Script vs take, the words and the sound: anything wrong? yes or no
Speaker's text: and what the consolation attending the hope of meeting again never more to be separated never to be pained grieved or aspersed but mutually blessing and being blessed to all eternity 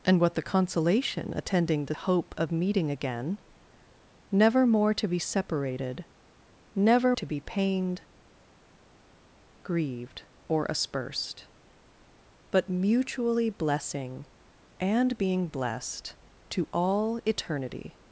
no